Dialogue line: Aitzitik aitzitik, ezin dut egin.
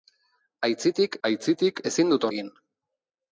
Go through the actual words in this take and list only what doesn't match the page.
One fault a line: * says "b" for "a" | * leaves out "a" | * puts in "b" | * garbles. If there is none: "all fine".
all fine